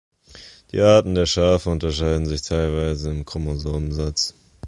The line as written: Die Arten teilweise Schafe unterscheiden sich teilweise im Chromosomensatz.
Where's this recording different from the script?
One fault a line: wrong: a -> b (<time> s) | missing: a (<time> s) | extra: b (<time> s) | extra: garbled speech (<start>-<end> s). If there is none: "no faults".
wrong: teilweise -> der (1.1 s)